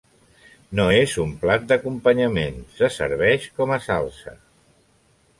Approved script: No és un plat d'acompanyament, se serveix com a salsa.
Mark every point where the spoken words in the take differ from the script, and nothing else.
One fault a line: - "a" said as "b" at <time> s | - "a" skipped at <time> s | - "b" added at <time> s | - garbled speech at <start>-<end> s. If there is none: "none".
none